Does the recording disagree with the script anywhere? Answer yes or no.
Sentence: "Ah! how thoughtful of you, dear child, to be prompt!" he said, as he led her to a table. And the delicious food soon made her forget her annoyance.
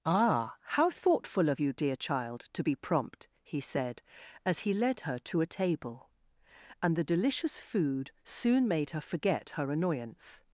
no